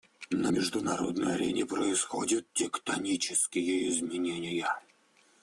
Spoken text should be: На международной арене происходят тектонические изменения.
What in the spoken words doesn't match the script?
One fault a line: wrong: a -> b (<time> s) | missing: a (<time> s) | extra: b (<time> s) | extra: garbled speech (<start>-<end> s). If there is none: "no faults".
no faults